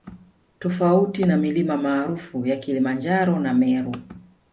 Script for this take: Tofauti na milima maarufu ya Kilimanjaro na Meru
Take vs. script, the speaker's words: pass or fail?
pass